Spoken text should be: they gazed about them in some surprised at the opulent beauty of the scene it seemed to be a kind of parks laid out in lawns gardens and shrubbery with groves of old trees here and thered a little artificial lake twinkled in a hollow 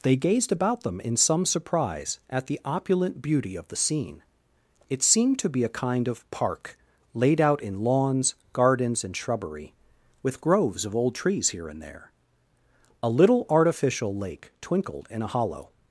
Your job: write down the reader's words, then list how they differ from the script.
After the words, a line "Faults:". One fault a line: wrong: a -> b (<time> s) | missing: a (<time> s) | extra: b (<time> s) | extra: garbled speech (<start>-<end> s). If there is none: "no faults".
they gazed about them in some surprise at the opulent beauty of the scene it seemed to be a kind of park laid out in lawns gardens and shrubbery with groves of old trees here and there a little artificial lake twinkled in a hollow
Faults:
wrong: surprised -> surprise (1.4 s)
wrong: parks -> park (6.3 s)
wrong: thered -> there (11.8 s)